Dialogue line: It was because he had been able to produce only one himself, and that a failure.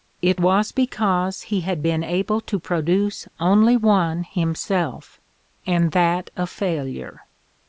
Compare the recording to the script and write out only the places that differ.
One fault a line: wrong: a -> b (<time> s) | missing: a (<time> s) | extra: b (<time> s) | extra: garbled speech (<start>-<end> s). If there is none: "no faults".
no faults